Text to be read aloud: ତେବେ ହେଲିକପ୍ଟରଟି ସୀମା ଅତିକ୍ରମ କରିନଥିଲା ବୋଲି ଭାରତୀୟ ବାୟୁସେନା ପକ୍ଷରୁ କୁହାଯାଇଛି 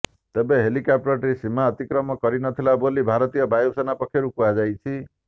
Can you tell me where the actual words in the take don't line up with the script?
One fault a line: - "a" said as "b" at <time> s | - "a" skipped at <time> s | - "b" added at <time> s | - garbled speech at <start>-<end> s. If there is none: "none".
none